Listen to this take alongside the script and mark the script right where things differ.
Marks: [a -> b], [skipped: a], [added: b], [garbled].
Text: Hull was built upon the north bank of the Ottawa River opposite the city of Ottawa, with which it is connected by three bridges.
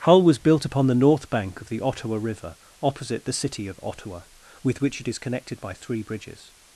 Hull was built upon the north bank of the Ottawa River opposite the city of Ottawa, with which it is connected by three bridges.